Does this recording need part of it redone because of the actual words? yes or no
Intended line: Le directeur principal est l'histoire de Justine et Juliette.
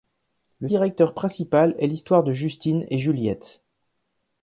no